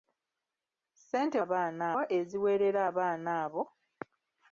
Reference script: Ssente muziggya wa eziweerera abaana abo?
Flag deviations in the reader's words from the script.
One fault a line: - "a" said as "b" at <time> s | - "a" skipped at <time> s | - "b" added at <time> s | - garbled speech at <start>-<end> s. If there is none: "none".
- "muziggya" said as "abaana" at 1.4 s